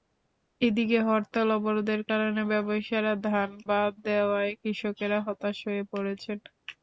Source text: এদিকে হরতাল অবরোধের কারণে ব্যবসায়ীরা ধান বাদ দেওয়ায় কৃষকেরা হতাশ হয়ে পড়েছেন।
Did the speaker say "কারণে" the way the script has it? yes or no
yes